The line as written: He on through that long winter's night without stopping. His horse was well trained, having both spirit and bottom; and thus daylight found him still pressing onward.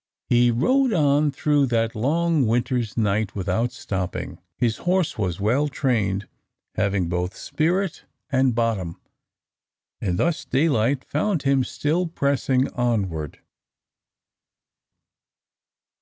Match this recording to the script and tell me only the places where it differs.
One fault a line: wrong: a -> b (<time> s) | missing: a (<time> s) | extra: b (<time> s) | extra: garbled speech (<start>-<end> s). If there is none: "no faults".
extra: rode (0.5 s)